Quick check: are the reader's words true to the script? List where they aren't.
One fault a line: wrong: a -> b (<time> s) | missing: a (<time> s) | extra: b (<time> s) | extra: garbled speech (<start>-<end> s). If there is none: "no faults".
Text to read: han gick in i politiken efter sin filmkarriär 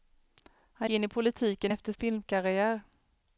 missing: gick (0.9 s)
missing: sin (1.9 s)